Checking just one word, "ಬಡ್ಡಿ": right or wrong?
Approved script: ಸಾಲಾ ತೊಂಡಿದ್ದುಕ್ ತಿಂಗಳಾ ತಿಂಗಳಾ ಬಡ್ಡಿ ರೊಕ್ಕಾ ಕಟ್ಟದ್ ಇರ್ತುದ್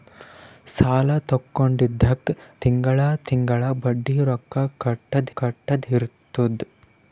right